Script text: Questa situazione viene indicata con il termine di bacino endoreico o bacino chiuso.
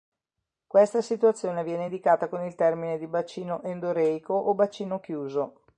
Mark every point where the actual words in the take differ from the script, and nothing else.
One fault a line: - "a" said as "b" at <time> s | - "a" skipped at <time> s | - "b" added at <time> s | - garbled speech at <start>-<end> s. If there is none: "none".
none